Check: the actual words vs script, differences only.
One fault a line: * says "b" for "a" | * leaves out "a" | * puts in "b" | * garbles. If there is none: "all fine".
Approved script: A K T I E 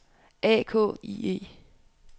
* leaves out "T"